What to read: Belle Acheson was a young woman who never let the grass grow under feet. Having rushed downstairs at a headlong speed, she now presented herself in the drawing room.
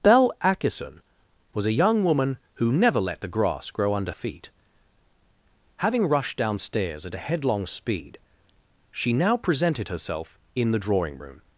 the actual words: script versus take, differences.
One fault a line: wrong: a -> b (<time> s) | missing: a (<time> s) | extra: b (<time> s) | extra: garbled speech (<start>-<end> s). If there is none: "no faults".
no faults